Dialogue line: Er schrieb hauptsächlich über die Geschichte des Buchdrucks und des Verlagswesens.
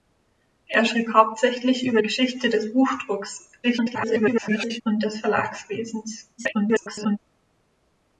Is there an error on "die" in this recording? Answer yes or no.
yes